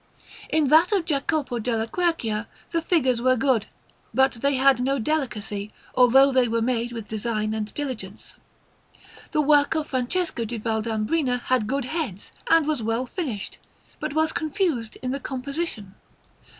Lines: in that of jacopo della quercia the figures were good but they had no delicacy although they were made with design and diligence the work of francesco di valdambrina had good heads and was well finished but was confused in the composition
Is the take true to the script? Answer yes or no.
yes